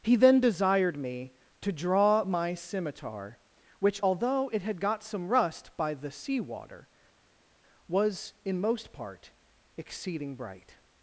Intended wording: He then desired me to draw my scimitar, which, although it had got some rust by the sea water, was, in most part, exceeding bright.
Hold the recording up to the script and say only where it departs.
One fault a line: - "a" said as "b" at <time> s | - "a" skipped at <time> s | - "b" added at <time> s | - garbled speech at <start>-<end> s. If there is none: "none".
none